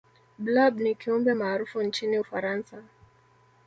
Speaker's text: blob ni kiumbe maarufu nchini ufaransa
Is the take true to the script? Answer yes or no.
yes